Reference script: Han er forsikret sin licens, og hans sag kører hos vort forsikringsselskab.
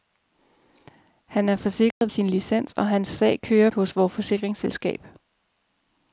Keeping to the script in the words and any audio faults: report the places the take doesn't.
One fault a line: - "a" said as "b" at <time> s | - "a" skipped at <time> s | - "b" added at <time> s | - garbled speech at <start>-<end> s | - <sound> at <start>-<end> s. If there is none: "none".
- dropout at 1.9-2.0 s